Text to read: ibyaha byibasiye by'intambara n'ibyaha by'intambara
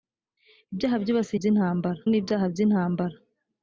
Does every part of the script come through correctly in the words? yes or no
yes